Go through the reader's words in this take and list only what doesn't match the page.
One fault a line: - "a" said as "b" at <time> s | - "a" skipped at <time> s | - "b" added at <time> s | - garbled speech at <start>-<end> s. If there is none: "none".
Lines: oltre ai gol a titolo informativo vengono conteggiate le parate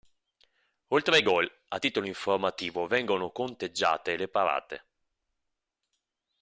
none